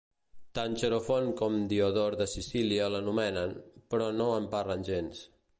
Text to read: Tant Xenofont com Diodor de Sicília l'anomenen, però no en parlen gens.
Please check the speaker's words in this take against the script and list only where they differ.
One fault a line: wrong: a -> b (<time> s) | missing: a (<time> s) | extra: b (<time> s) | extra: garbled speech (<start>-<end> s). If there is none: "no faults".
no faults